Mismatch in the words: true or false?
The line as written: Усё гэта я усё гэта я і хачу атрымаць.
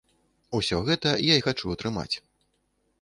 true